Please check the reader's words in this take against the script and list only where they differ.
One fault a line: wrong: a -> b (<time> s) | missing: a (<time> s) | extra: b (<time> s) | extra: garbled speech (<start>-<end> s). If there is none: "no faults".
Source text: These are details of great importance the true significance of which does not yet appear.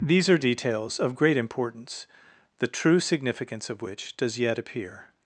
missing: not (4.4 s)